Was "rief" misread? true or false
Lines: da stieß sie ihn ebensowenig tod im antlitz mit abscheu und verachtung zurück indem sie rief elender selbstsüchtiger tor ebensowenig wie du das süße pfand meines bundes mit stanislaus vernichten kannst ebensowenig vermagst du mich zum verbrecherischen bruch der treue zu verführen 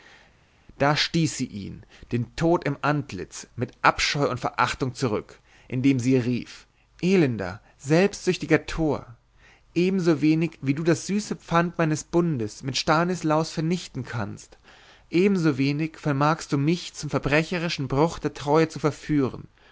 false